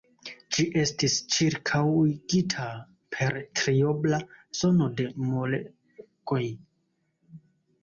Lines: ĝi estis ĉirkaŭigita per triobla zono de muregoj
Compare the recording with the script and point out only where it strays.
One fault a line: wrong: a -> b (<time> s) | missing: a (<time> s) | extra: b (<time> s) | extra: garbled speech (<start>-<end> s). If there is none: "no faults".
no faults